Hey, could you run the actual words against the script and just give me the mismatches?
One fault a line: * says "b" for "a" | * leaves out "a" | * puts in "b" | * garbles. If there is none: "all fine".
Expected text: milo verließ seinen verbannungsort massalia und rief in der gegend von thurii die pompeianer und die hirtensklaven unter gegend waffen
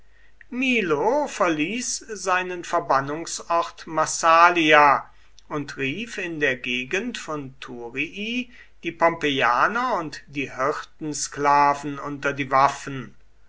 * says "die" for "gegend"